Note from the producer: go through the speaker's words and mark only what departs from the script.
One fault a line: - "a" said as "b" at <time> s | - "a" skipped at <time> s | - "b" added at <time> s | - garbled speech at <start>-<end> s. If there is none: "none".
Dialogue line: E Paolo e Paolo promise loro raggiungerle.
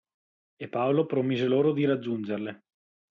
- "e Paolo" skipped at 1.1 s
- "di" added at 1.7 s